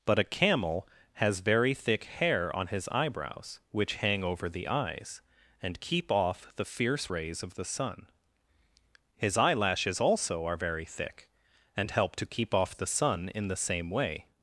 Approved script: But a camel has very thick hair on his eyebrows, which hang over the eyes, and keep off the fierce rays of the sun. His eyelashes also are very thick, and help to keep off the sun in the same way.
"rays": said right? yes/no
yes